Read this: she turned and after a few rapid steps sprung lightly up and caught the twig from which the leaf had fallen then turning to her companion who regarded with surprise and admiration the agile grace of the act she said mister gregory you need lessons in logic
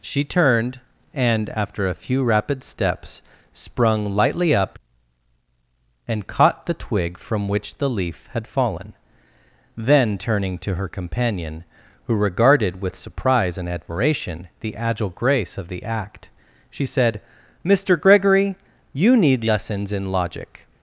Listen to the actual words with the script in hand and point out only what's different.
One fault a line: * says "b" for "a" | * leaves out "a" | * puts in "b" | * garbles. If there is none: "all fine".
all fine